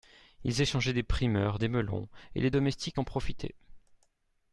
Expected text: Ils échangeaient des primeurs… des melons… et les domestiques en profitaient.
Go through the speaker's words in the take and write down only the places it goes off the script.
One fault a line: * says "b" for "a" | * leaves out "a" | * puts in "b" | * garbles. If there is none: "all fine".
all fine